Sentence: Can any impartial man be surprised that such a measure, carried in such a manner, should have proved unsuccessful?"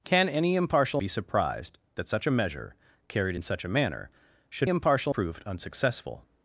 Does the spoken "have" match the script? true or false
false